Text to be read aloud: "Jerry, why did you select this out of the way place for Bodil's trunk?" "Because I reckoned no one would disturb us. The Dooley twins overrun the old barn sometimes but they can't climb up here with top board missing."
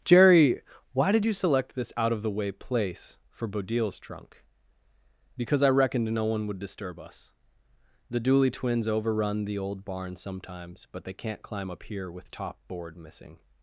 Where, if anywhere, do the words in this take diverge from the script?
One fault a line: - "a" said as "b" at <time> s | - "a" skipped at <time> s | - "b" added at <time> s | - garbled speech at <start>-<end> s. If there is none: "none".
none